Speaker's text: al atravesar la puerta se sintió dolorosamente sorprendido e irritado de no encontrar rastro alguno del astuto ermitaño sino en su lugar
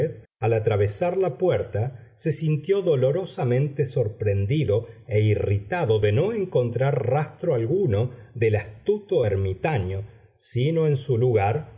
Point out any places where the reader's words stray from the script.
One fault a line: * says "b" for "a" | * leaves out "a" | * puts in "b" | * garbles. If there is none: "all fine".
all fine